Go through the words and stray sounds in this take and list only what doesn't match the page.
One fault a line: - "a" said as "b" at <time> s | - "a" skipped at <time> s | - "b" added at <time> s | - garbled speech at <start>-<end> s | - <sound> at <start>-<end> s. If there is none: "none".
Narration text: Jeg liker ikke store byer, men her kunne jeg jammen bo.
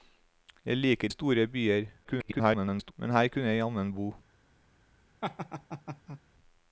- "ikke" skipped at 1.1 s
- garbled speech at 2.0-2.9 s
- laugh at 5.2-6.2 s